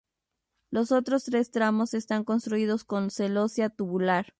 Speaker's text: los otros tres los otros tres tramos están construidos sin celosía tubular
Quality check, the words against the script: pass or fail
fail